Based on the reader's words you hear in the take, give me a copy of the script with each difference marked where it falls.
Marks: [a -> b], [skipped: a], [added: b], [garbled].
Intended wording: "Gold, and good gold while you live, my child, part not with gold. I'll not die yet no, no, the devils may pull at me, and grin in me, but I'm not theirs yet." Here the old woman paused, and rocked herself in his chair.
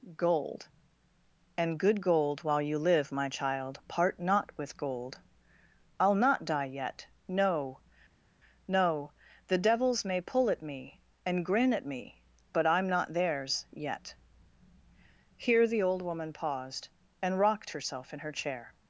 "Gold, and good gold while you live, my child, part not with gold. I'll not die yet no, no, the devils may pull at me, and grin [in -> at] me, but I'm not theirs yet." Here the old woman paused, and rocked herself in [his -> her] chair.